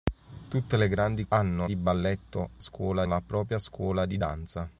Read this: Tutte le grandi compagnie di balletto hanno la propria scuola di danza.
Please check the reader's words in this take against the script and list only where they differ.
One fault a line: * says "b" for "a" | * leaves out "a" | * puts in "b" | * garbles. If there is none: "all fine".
* says "hanno" for "compagnie"
* says "scuola" for "hanno"